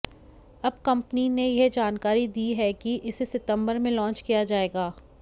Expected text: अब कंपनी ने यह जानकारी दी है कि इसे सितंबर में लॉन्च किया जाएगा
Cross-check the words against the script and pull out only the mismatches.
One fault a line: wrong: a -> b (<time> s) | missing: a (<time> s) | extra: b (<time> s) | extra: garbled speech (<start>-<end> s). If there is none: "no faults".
no faults